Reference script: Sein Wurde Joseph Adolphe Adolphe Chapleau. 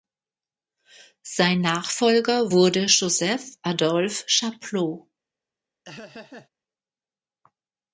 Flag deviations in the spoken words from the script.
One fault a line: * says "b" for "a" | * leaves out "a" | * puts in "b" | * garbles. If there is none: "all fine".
* puts in "Nachfolger"
* leaves out "Adolphe"